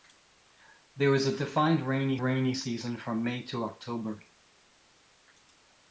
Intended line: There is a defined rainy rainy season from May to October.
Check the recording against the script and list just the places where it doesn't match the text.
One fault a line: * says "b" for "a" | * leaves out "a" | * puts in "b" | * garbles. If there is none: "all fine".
all fine